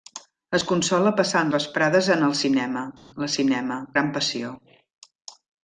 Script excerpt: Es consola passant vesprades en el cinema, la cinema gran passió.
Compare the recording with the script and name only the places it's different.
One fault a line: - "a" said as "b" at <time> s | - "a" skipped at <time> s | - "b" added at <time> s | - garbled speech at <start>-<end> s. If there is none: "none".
none